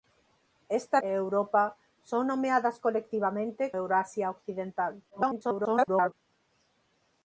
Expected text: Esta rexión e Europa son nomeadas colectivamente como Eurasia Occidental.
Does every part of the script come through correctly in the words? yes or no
no